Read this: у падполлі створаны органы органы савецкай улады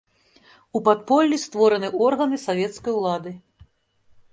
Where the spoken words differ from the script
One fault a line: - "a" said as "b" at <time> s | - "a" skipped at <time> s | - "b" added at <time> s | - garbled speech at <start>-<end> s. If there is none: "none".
- "органы" skipped at 2.4 s